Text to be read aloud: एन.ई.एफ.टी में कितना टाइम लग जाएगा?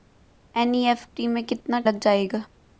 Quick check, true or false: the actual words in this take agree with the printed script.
false